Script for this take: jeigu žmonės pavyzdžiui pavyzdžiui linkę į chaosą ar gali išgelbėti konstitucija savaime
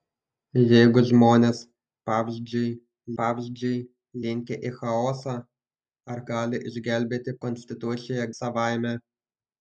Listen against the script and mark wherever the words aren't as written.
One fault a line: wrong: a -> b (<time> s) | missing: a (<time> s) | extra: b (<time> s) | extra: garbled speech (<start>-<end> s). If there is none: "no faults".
no faults